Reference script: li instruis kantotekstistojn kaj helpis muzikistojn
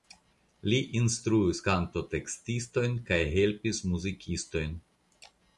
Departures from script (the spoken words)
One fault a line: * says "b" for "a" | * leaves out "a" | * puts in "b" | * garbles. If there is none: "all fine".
all fine